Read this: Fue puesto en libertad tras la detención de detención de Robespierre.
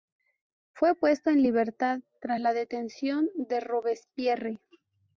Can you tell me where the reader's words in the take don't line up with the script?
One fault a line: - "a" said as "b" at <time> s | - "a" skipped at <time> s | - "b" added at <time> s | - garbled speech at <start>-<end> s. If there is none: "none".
- "detención de" skipped at 3.6 s